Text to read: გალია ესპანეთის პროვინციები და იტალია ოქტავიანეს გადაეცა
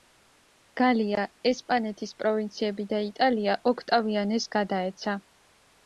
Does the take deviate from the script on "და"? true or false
false